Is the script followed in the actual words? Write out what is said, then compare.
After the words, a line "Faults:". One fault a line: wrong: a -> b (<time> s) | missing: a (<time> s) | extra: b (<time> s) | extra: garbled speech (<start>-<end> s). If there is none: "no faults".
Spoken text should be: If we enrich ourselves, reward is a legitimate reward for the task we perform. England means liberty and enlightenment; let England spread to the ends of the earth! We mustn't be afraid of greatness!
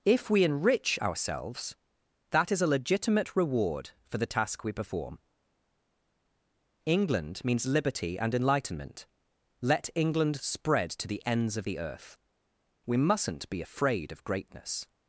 If we enrich ourselves, that is a legitimate reward for the task we perform. England means liberty and enlightenment; let England spread to the ends of the earth! We mustn't be afraid of greatness!
Faults:
wrong: reward -> that (2.3 s)